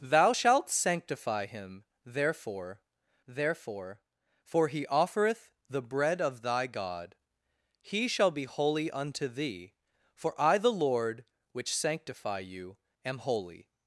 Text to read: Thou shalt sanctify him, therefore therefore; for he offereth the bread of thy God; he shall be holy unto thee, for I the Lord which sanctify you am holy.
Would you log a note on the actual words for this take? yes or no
no